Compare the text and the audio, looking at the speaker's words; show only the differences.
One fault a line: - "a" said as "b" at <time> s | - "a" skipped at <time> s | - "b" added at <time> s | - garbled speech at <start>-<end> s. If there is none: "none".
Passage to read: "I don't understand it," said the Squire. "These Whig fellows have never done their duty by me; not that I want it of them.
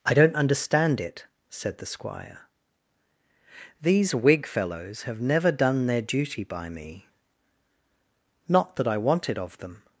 none